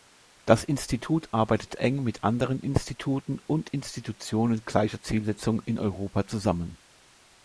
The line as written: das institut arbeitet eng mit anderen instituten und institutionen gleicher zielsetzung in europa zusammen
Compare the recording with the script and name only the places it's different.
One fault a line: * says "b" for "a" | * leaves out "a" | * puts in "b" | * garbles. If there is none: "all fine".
all fine